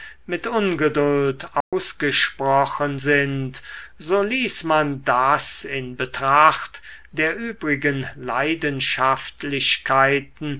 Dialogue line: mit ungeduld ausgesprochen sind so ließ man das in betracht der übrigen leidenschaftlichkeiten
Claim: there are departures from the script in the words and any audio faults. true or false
true